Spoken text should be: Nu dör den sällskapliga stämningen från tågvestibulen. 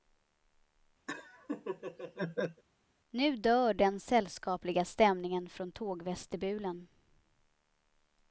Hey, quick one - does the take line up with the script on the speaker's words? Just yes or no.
yes